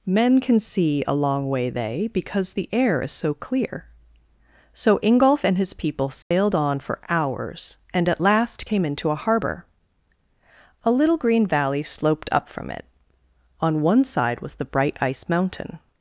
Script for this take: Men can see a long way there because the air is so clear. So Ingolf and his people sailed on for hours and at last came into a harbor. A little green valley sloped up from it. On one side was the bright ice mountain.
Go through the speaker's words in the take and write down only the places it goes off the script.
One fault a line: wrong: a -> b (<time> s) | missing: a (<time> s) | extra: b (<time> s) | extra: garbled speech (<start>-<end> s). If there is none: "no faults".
wrong: there -> they (1.7 s)